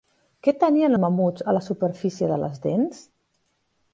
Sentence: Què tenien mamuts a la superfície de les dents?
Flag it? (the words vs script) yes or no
no